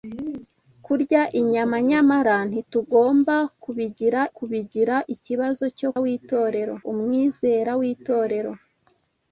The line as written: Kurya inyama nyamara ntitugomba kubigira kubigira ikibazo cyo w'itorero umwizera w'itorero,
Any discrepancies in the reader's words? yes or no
no